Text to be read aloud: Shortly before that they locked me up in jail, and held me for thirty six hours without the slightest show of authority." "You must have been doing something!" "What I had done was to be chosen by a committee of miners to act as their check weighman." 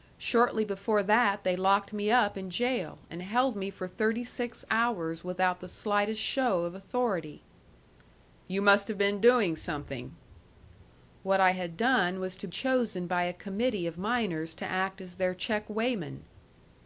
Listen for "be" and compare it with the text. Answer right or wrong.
wrong